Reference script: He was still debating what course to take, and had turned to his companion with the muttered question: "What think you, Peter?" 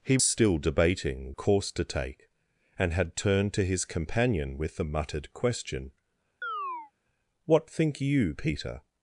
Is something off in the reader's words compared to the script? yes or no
yes